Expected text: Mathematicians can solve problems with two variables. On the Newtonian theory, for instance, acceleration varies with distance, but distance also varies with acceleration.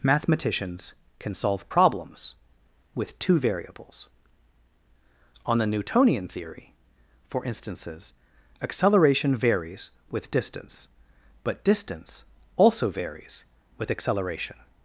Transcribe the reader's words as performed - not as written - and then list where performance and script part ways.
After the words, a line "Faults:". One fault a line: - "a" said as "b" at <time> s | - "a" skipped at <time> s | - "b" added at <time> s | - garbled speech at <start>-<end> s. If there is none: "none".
Mathematicians can solve problems with two variables. On the Newtonian theory, for instances, acceleration varies with distance, but distance also varies with acceleration.
Faults:
- "instance" said as "instances" at 7.5 s